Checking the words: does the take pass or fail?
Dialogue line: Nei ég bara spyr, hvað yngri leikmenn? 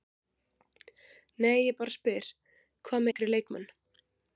pass